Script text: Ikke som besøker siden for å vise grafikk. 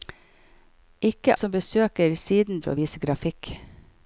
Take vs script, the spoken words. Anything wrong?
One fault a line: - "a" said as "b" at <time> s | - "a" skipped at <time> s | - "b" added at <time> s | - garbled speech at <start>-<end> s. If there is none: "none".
none